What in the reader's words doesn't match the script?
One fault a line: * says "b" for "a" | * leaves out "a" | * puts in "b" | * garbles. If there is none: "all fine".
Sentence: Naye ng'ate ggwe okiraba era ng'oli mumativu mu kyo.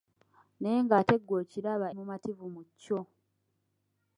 * leaves out "era ng'oli"